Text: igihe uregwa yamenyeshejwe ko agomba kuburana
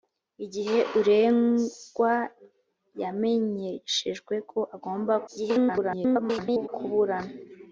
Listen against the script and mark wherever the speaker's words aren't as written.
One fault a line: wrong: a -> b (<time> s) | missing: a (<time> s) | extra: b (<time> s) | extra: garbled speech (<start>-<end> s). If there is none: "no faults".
extra: garbled speech (5.3-6.7 s)